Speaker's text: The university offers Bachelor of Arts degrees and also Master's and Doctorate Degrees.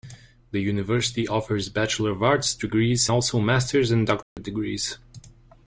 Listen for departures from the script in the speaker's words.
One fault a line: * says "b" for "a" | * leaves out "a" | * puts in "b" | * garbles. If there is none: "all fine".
* leaves out "and"